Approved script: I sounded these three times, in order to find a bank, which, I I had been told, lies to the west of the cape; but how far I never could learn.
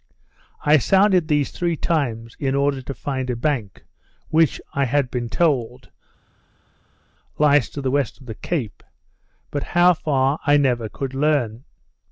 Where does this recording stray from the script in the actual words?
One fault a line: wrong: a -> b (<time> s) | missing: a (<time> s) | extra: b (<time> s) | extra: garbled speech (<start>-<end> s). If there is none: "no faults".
missing: I (4.8 s)